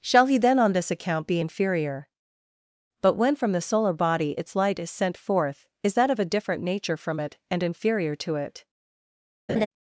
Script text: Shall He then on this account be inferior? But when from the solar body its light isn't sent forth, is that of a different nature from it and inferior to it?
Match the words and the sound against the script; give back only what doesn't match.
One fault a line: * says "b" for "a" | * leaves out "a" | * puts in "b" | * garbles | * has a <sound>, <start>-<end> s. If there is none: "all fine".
* says "is" for "isn't"
* has a laugh, 9.5-9.7 s